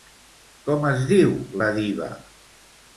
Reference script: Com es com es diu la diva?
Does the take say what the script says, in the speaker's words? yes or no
no